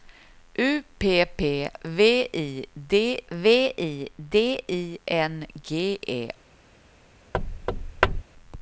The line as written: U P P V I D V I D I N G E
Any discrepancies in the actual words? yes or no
no